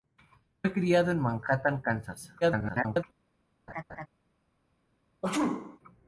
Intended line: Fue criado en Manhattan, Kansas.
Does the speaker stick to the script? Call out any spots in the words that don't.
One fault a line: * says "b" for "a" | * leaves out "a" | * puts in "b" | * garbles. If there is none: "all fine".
* garbles